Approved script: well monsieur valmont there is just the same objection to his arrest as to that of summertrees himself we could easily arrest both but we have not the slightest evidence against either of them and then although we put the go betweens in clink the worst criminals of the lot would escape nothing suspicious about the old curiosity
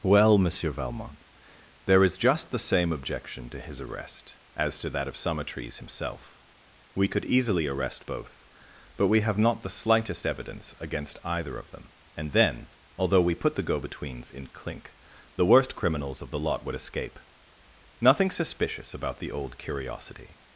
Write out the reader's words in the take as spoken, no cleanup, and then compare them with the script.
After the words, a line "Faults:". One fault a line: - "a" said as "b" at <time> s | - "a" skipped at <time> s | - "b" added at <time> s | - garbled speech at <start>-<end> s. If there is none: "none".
well monsieur valmont there is just the same objection to his arrest as to that of summertrees himself we could easily arrest both but we have not the slightest evidence against either of them and then although we put the go betweens in clink the worst criminals of the lot would escape nothing suspicious about the old curiosity
Faults:
none